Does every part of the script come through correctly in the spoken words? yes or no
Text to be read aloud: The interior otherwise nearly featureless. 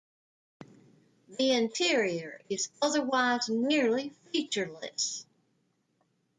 no